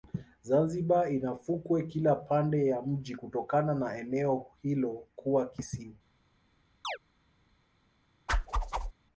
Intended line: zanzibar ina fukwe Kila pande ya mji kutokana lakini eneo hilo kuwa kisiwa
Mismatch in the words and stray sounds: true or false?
true